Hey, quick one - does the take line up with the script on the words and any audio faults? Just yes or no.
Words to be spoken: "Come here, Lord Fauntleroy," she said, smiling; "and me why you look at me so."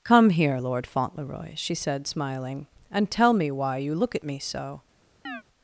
no